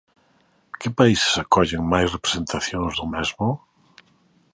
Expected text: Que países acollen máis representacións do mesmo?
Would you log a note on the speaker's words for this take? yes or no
no